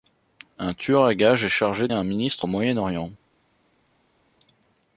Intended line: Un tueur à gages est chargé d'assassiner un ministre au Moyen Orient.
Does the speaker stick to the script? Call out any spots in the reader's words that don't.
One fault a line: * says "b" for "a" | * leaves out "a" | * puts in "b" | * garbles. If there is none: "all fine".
* leaves out "d'assassiner"